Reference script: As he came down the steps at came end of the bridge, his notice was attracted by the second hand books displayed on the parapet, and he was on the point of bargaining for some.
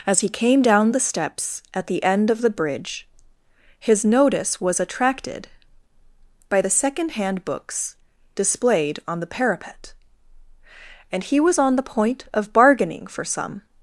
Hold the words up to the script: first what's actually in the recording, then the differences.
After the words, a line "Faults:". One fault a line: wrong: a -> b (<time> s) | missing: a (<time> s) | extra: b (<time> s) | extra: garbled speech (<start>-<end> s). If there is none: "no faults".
As he came down the steps at the end of the bridge, his notice was attracted by the second hand books displayed on the parapet, and he was on the point of bargaining for some.
Faults:
wrong: came -> the (1.9 s)